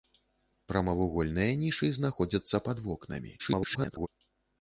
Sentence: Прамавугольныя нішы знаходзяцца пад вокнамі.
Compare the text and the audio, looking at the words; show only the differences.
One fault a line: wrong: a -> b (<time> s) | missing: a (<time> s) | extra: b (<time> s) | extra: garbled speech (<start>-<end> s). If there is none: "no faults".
extra: garbled speech (3.4-4.1 s)